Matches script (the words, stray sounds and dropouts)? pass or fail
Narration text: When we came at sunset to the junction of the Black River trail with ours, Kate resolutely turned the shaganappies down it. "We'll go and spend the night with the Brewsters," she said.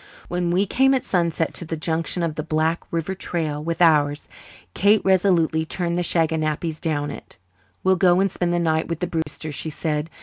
fail